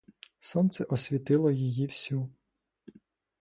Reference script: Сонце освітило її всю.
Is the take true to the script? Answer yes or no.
yes